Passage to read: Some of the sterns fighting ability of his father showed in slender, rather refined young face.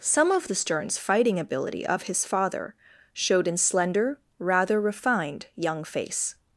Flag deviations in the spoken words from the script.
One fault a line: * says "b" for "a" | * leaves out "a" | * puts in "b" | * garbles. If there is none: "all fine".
all fine